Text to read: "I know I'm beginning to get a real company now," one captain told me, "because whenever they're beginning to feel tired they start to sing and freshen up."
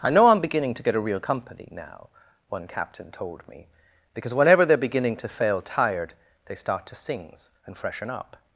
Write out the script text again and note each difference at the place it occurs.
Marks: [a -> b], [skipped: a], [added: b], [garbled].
"I know I'm beginning to get a real company now," one captain told me, "because whenever they're beginning to [feel -> fail] tired they start to [sing -> sings] and freshen up."